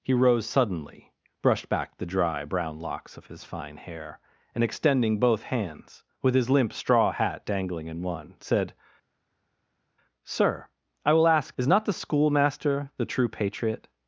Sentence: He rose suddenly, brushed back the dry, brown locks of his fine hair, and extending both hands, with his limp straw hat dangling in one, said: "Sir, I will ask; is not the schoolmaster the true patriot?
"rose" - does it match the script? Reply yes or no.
yes